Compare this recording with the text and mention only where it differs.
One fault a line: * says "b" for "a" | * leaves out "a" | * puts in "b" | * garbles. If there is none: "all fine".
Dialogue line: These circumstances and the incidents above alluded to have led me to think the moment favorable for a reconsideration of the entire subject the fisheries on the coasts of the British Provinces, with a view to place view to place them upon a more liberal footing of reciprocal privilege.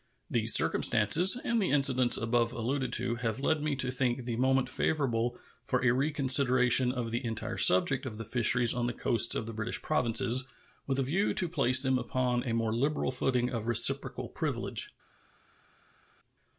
* puts in "of"
* leaves out "view to place"